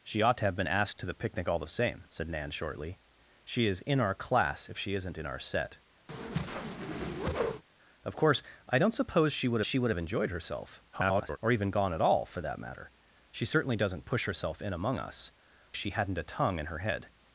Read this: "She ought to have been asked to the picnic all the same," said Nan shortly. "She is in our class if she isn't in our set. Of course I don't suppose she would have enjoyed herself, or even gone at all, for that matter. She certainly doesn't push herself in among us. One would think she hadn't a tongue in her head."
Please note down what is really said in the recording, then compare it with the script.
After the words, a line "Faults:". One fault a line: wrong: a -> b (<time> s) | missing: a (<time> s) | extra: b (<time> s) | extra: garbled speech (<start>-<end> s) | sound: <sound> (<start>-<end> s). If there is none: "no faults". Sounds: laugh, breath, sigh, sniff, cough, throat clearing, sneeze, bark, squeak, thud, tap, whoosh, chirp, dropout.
"She ought to have been asked to the picnic all the same," said Nan shortly. "She is in our class if she isn't in our set. Of course I don't suppose she would she would have enjoyed herself, [garbled] or even gone at all, for that matter. She certainly doesn't push herself in among us. She hadn't a tongue in her head."
Faults:
sound: whoosh (6.1-7.6 s)
extra: she would (9.6 s)
extra: garbled speech (10.9-11.4 s)
missing: One would think (15.3 s)